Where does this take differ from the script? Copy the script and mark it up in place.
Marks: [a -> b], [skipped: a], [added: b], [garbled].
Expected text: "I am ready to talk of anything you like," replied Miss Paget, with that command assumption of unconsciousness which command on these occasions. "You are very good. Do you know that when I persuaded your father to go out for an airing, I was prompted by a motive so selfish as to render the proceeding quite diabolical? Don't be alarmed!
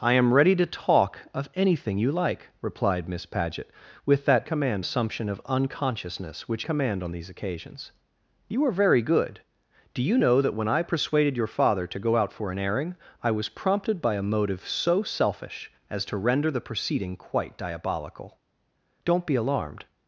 "I am ready to talk of anything you like," replied Miss Paget, with that command assumption of unconsciousness which command on these occasions. "You are very good. Do you know that when I persuaded your father to go out for an airing, I was prompted by a motive so selfish as to render the proceeding quite diabolical? Don't be alarmed!